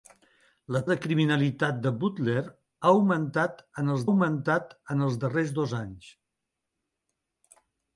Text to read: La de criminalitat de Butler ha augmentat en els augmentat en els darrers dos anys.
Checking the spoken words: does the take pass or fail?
pass